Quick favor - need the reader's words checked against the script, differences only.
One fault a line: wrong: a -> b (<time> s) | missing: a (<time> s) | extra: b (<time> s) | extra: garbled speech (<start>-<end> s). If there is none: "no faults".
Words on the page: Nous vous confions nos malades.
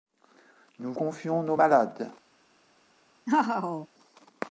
missing: vous (0.9 s)